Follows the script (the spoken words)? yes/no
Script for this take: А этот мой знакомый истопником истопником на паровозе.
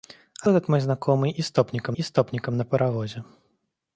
yes